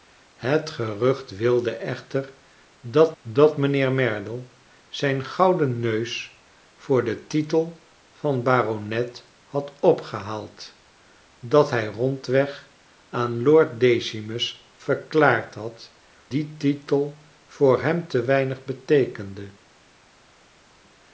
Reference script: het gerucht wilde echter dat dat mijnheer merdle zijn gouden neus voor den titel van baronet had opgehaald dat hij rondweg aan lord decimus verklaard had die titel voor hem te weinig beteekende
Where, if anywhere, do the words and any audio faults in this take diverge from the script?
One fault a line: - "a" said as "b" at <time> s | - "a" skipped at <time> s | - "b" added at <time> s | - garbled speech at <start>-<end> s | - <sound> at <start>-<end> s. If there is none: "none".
none